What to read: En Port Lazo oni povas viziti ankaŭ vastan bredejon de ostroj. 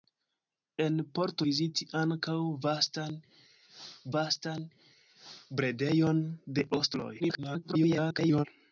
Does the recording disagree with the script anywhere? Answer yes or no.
yes